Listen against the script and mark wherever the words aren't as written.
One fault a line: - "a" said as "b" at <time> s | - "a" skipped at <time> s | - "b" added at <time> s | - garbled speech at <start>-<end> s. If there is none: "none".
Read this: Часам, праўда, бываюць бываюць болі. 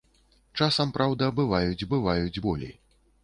none